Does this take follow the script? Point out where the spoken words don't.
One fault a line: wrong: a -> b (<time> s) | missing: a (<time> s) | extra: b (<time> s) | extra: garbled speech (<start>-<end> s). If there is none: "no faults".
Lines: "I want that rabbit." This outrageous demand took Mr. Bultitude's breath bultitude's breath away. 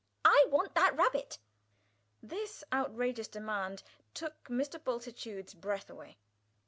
missing: bultitude's breath (5.9 s)